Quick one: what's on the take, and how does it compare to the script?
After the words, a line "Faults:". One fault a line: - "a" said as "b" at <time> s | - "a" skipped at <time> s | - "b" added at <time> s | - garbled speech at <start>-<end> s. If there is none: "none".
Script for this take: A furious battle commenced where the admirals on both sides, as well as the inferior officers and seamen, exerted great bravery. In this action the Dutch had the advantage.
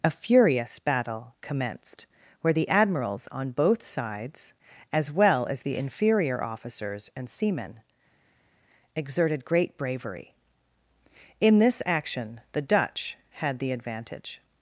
A furious battle commenced where the admirals on both sides, as well as the inferior officers and seamen, exerted great bravery. In this action the Dutch had the advantage.
Faults:
none